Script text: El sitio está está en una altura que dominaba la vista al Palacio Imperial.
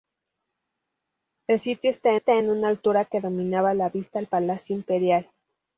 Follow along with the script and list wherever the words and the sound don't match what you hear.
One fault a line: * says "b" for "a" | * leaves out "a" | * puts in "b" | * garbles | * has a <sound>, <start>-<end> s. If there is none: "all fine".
all fine